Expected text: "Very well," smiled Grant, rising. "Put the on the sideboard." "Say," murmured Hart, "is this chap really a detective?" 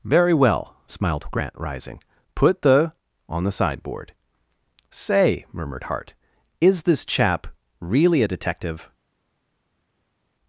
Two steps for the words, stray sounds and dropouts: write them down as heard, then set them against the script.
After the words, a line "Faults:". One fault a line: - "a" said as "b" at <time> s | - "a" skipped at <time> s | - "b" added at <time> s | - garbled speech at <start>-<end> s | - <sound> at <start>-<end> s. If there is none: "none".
"Very well," smiled Grant, rising. "Put the on the sideboard." "Say," murmured Hart, "is this chap really a detective?"
Faults:
none